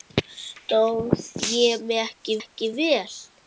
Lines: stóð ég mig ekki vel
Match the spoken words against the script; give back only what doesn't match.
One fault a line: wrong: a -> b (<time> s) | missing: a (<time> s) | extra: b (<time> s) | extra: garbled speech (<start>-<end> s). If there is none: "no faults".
extra: ekki (2.4 s)